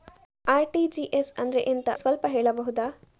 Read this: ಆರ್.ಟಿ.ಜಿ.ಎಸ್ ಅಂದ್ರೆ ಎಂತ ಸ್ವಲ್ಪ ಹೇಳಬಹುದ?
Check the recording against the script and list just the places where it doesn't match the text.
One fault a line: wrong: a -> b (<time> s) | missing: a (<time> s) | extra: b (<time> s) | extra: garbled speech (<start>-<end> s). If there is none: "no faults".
no faults